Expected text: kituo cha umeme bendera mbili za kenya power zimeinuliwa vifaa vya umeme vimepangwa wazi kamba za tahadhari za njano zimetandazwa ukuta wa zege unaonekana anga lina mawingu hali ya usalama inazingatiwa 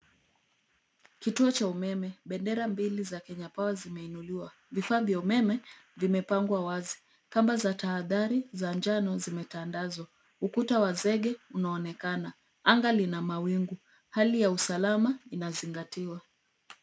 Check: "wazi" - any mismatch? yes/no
no